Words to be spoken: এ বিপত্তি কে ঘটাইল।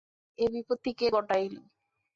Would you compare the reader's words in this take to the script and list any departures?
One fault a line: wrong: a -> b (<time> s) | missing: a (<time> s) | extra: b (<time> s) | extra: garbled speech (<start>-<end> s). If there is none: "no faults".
no faults